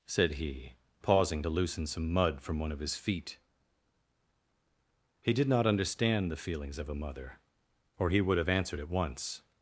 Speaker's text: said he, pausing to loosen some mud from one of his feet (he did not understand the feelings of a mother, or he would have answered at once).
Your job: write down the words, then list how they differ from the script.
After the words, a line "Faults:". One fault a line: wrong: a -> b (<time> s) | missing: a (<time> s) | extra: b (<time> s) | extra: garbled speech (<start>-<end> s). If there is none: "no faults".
said he, pausing to loosen some mud from one of his feet (he did not understand the feelings of a mother, or he would have answered at once).
Faults:
no faults